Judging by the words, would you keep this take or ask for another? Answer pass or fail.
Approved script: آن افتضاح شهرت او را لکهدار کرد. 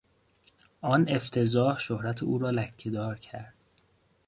pass